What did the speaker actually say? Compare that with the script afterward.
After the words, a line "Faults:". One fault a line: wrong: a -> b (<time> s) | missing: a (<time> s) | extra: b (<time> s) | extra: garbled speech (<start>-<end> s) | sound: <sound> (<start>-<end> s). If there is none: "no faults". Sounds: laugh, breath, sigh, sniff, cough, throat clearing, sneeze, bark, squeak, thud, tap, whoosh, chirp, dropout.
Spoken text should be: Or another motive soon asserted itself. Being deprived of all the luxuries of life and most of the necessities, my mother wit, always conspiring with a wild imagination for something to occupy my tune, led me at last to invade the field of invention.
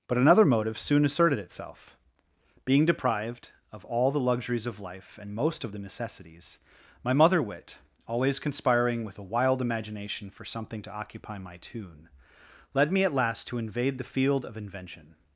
But another motive soon asserted itself. Being deprived of all the luxuries of life and most of the necessities, my mother wit, always conspiring with a wild imagination for something to occupy my tune, led me at last to invade the field of invention.
Faults:
wrong: Or -> But (0.1 s)